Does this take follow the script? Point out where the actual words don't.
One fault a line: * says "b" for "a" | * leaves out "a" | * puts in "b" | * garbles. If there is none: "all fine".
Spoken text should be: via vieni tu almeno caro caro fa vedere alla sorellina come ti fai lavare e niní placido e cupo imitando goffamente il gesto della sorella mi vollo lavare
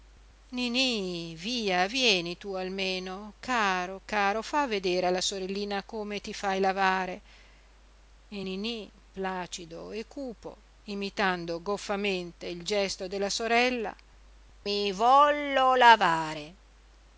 all fine